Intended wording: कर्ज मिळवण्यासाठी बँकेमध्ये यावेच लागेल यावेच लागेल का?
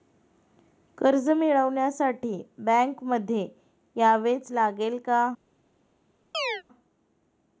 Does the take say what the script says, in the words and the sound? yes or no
no